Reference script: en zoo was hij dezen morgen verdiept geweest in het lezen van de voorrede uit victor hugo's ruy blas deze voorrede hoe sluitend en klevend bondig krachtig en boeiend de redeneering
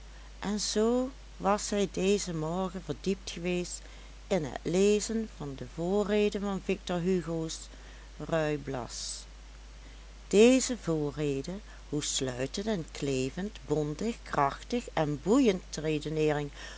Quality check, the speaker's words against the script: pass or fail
fail